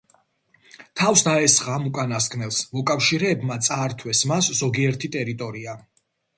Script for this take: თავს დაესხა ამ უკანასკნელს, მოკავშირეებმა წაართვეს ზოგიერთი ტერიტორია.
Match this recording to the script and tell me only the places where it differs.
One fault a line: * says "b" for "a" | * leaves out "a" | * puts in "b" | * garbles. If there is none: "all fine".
* puts in "მას"